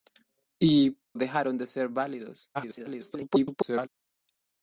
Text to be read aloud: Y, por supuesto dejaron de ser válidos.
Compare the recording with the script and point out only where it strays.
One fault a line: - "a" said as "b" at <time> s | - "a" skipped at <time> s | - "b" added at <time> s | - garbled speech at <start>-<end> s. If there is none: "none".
- "por supuesto" skipped at 1.0 s
- garbled speech at 2.5-3.9 s